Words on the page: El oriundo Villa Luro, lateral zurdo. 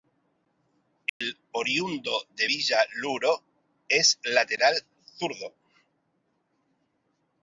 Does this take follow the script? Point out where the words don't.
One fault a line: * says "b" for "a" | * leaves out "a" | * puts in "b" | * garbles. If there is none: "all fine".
* puts in "de"
* puts in "es"